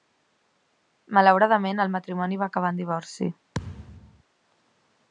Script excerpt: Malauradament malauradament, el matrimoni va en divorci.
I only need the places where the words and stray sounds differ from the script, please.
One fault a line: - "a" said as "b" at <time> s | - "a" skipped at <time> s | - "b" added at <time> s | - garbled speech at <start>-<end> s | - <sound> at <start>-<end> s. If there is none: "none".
- "malauradament" skipped at 1.8 s
- "acabar" added at 2.5 s
- thud at 3.5-4.2 s